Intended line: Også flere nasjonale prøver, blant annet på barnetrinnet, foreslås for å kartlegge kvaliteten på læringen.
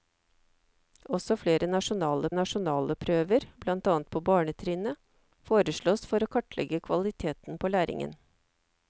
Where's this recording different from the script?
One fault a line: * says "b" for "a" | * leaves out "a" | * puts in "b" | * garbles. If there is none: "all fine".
* puts in "nasjonale"